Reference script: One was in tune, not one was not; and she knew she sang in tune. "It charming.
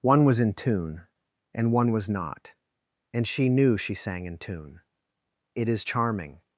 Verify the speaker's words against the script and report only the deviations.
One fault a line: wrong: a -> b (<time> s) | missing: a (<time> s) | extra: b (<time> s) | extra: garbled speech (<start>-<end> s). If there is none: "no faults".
wrong: not -> and (1.5 s)
extra: is (5.7 s)